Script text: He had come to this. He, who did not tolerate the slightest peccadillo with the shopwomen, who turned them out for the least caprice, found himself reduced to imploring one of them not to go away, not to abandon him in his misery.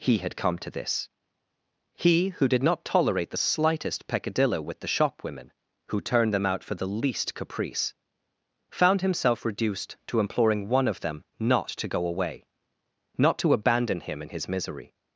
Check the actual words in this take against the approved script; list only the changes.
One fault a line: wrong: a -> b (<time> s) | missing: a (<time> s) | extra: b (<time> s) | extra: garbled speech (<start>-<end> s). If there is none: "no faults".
no faults